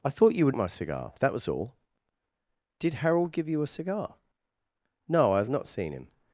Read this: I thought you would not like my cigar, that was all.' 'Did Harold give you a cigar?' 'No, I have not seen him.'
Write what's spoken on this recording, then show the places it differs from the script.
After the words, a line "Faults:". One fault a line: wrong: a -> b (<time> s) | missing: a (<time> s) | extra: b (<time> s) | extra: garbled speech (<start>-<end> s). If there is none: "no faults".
I thought you would my cigar, that was all.' 'Did Harold give you a cigar?' 'No, I have not seen him.'
Faults:
missing: not like (0.6 s)